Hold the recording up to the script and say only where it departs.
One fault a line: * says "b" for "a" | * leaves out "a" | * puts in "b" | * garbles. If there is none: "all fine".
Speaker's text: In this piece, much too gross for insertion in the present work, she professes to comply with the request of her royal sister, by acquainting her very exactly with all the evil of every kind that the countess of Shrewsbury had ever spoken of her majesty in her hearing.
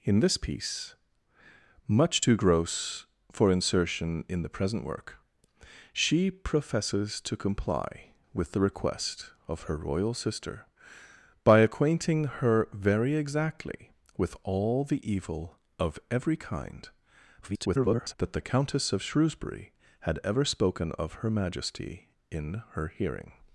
* garbles